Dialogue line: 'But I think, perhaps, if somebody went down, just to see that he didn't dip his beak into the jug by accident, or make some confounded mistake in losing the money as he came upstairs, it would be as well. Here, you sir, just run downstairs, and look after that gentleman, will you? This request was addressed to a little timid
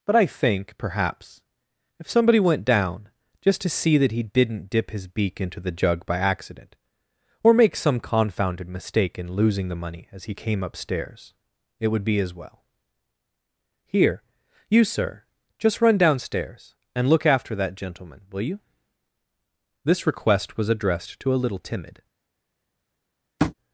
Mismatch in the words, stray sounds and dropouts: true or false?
true